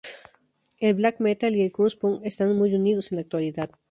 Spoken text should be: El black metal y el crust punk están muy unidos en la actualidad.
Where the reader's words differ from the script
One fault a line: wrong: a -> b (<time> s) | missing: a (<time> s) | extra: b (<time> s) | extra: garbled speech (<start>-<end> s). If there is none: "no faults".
no faults